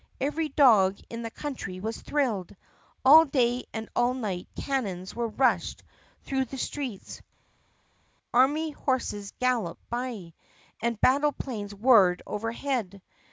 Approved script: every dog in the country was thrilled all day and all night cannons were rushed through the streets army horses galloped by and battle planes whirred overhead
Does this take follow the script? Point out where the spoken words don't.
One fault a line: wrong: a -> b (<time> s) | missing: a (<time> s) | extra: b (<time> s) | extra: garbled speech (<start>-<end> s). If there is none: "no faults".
no faults